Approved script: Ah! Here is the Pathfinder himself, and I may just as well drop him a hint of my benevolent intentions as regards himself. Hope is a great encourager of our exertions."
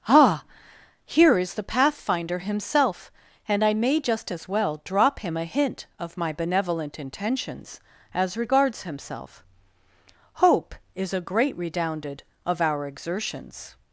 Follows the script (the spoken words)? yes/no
no